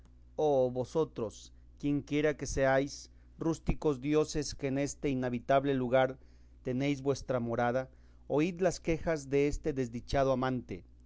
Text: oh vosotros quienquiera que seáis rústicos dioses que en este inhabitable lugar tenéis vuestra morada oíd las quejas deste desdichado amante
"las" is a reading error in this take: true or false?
false